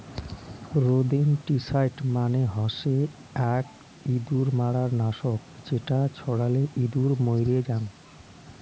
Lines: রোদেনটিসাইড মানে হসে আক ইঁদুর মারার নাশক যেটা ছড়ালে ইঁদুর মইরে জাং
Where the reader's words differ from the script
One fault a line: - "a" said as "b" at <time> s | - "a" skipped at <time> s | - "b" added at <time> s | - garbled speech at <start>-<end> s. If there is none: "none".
none